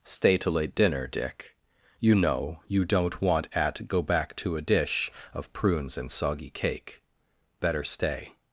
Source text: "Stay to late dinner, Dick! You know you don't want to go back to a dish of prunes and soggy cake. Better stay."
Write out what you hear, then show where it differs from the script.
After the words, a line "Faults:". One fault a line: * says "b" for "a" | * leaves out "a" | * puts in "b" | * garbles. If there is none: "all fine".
"Stay to late dinner, Dick! You know you don't want at go back to a dish of prunes and soggy cake. Better stay."
Faults:
* says "at" for "to"